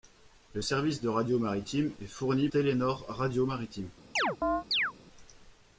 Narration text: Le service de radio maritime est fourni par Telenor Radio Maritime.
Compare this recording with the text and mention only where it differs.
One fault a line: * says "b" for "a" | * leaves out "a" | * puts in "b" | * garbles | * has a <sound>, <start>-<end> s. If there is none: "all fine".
* leaves out "par"
* has a chirp, 4.2-4.9 s